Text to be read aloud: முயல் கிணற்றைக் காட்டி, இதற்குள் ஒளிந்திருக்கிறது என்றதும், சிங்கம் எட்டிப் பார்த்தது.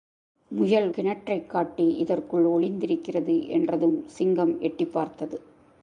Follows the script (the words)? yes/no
yes